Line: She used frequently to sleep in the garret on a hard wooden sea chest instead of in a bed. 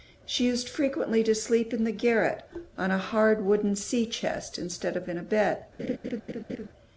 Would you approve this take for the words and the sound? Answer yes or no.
no